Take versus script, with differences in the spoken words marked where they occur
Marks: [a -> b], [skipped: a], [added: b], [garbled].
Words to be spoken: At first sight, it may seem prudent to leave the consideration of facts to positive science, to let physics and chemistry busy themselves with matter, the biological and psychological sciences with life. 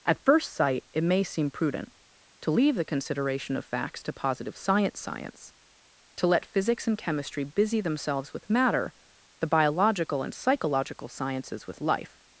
At first sight, it may seem prudent to leave the consideration of facts to positive science, [added: science] to let physics and chemistry busy themselves with matter, the biological and psychological sciences with life.